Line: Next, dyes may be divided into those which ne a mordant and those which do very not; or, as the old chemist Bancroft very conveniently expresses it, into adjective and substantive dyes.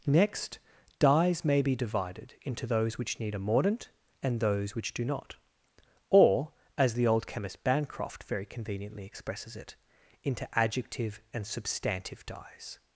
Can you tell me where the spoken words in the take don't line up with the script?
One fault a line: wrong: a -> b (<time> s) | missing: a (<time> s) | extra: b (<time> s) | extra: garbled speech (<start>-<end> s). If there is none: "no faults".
wrong: ne -> need (3.2 s)
missing: very (5.0 s)